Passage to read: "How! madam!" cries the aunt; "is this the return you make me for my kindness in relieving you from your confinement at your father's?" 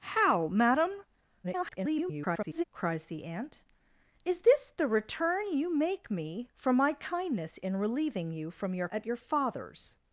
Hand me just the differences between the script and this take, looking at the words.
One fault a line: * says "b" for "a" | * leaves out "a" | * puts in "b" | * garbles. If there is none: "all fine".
* garbles
* leaves out "confinement"